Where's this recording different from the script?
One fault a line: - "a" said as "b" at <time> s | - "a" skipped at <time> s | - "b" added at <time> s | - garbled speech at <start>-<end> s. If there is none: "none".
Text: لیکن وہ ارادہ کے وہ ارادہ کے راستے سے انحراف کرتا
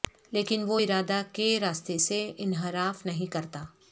- "وہ ارادہ کے" skipped at 1.5 s
- "نہیں" added at 3.0 s